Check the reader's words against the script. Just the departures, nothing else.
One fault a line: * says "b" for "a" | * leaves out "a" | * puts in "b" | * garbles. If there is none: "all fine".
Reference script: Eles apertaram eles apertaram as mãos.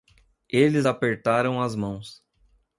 * leaves out "eles apertaram"